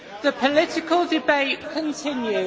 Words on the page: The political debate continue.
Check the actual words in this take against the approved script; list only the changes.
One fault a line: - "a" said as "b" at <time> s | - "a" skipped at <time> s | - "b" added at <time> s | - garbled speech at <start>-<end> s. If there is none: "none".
none